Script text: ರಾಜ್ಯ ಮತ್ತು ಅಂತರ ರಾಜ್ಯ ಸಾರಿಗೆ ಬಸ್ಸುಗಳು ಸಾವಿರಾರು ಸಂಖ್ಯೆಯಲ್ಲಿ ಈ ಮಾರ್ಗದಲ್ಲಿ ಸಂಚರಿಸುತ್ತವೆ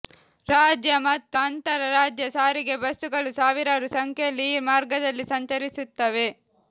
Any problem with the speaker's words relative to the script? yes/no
no